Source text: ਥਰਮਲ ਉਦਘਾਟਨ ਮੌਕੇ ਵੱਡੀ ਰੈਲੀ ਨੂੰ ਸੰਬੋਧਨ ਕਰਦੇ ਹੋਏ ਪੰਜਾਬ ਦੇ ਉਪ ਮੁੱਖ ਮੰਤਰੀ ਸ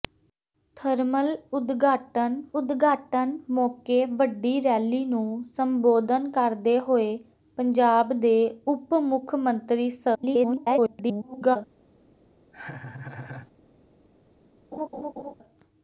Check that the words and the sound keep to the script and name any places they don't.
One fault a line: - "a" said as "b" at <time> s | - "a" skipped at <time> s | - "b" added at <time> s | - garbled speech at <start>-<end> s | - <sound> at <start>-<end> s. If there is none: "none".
- "ਉਦਘਾਟਨ" added at 2.5 s
- garbled speech at 10.1-11.6 s
- laugh at 12.5-13.5 s
- laugh at 14.7-15.3 s